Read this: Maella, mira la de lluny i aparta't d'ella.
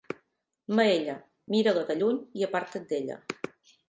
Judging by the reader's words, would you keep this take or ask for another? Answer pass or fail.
pass